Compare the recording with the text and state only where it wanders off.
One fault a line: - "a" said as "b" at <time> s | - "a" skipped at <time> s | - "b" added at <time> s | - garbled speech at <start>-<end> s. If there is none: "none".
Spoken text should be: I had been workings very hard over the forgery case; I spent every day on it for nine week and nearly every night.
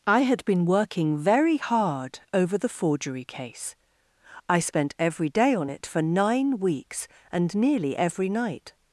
- "workings" said as "working" at 0.7 s
- "week" said as "weeks" at 6.6 s